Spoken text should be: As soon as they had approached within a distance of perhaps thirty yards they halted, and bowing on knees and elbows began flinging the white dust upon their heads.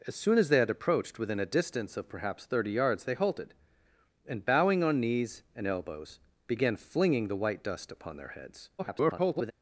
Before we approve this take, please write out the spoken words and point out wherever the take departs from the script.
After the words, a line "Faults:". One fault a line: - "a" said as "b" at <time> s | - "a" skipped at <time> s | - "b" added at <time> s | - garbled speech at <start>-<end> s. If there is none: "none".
As soon as they had approached within a distance of perhaps thirty yards they halted, and bowing on knees and elbows began flinging the white dust upon their heads. [garbled]
Faults:
- garbled speech at 8.8-9.5 s